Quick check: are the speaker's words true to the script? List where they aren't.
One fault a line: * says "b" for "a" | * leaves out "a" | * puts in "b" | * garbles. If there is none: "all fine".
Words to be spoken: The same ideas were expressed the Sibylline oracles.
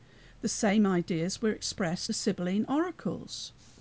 all fine